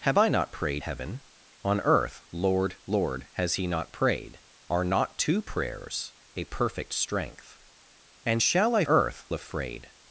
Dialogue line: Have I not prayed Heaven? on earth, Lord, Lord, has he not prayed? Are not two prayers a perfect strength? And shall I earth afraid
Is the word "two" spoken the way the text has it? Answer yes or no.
yes